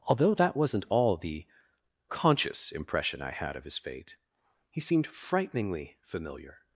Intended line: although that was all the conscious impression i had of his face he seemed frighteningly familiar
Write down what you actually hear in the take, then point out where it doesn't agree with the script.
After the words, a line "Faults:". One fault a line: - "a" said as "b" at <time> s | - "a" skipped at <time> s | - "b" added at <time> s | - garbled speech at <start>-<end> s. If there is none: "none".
although that wasn't all the conscious impression i had of his fate he seemed frighteningly familiar
Faults:
- "was" said as "wasn't" at 0.6 s
- "face" said as "fate" at 3.8 s